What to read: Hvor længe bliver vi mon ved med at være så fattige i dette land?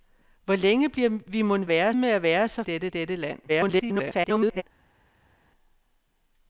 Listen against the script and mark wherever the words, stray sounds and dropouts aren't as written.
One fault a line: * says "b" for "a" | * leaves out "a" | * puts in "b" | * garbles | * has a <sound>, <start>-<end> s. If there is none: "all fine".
* says "være" for "ved"
* says "dette" for "fattige"
* garbles